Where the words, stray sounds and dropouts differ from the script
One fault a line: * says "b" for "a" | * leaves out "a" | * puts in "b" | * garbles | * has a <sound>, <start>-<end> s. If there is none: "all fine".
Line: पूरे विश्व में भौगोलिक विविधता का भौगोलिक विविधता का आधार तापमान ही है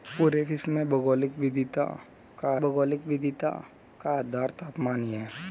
all fine